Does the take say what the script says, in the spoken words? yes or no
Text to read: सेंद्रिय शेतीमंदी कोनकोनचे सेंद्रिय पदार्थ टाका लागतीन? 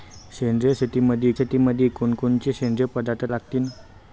no